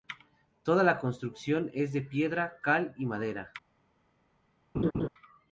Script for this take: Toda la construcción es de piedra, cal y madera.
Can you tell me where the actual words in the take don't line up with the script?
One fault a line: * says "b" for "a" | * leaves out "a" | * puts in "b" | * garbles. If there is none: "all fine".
all fine